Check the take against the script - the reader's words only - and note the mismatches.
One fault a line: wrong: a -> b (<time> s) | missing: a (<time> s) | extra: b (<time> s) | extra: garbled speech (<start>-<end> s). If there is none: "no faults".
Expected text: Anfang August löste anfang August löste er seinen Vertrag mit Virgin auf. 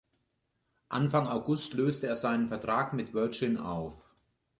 missing: anfang August löste (2.1 s)